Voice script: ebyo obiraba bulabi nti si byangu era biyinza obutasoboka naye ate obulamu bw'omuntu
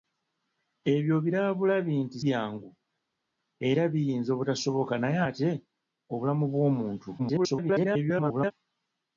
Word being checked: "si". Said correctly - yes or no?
no